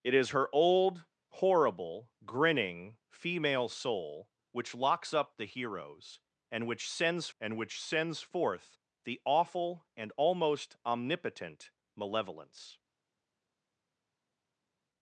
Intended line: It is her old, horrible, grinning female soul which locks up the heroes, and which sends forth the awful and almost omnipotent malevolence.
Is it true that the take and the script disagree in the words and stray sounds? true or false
true